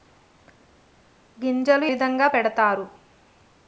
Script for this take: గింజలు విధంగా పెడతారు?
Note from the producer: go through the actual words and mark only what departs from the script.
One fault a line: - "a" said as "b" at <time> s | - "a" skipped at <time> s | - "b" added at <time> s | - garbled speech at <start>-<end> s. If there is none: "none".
none